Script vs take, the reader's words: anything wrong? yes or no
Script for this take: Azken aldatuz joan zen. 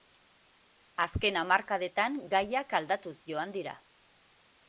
yes